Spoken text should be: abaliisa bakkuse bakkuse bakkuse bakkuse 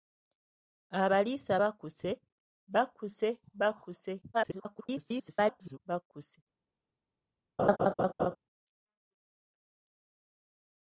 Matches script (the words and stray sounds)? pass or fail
fail